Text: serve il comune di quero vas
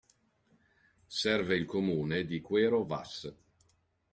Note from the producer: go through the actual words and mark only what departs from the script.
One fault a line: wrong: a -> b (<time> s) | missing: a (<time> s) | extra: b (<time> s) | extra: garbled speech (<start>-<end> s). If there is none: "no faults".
no faults